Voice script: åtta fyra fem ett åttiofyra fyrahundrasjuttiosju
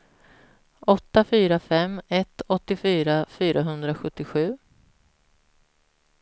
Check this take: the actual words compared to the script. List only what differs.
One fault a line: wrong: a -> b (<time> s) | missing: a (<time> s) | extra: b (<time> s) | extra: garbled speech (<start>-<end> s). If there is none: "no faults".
no faults